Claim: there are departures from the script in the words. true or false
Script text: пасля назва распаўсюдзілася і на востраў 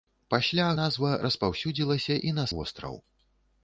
false